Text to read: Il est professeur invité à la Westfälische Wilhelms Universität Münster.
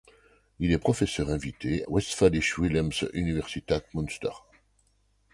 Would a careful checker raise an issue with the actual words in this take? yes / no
yes